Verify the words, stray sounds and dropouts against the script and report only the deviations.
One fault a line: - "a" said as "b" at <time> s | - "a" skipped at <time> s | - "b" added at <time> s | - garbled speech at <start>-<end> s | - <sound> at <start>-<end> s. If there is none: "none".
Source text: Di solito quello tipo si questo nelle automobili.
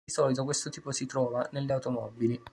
- "quello" said as "questo" at 0.4 s
- "questo" said as "trova" at 1.0 s